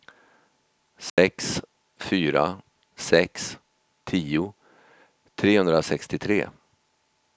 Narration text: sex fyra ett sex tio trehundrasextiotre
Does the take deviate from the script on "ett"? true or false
true